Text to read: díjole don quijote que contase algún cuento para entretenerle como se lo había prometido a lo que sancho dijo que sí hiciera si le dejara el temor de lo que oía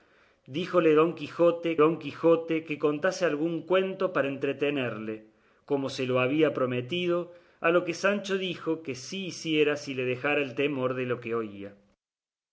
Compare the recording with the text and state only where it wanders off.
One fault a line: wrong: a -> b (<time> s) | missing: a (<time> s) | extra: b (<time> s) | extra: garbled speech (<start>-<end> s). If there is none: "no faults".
extra: don quijote (1.8 s)